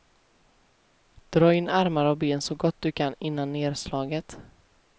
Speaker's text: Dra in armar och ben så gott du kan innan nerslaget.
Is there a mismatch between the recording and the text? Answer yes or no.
no